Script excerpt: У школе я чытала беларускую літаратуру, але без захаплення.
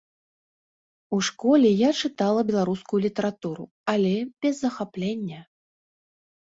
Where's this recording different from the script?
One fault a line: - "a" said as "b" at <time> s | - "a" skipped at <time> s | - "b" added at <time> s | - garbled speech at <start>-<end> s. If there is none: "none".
none